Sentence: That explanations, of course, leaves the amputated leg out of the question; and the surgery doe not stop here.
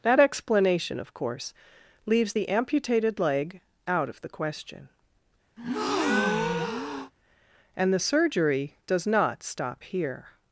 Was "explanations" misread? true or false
true